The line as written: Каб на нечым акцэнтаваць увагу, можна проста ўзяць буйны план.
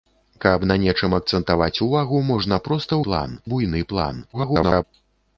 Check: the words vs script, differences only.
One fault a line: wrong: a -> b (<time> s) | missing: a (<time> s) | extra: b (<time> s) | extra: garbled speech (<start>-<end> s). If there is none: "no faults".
wrong: ўзяць -> план (3.1 s)
extra: garbled speech (4.3-4.8 s)